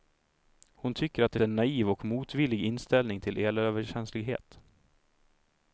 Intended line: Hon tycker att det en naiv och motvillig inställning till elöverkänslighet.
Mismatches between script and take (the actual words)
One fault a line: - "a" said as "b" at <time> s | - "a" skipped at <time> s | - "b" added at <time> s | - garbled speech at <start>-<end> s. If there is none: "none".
none